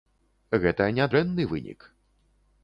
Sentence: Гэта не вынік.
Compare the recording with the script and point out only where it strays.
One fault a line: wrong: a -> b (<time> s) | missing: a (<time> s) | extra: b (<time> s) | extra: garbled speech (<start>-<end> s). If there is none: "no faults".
extra: дрэнны (1.1 s)